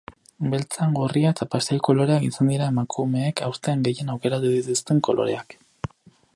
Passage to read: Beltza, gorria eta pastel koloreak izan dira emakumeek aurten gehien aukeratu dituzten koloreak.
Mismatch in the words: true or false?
false